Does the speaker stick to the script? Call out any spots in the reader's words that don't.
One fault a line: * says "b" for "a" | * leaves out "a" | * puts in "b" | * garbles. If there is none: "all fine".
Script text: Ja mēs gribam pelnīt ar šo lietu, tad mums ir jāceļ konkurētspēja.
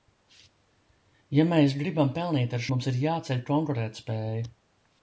* leaves out "šo lietu tad"